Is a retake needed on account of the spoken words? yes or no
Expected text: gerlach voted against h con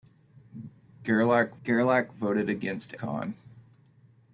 yes